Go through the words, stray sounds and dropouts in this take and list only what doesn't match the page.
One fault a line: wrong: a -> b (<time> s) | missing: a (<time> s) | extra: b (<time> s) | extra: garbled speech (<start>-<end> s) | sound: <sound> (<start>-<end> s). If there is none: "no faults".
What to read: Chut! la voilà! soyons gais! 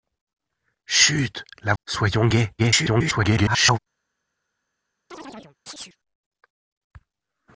missing: voilà (1.8 s)
extra: garbled speech (2.6-3.8 s)
sound: chirp (5.1-6.0 s)